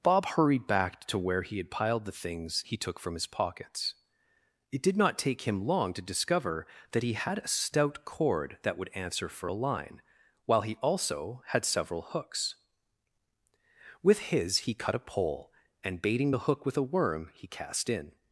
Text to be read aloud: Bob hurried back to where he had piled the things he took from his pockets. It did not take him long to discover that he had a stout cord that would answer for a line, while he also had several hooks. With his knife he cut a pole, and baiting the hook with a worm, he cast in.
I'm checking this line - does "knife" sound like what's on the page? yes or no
no